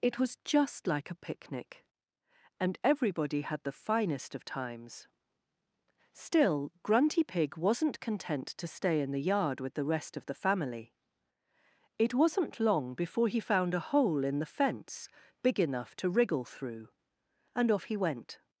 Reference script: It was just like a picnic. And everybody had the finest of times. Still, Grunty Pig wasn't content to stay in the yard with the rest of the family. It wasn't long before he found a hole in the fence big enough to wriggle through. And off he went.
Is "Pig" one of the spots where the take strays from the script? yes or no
no